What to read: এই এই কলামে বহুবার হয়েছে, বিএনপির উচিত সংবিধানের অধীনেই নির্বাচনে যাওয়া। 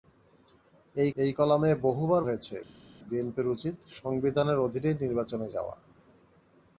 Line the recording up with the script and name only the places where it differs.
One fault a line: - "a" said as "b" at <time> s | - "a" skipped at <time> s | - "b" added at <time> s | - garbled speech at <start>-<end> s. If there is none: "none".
none